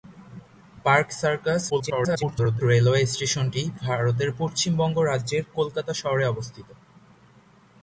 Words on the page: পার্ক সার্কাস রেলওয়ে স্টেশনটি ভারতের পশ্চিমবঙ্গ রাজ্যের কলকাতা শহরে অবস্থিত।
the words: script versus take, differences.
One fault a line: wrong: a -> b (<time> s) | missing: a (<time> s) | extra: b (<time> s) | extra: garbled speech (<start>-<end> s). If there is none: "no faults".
extra: garbled speech (1.7-2.6 s)